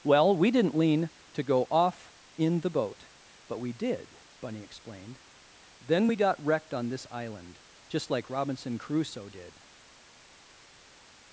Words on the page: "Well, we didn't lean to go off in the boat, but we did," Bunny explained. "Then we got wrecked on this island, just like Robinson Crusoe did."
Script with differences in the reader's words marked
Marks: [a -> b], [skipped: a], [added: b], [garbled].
"Well, we didn't lean to go off in the boat, but we did," Bunny explained. "Then we got wrecked on this island, just like Robinson Crusoe did."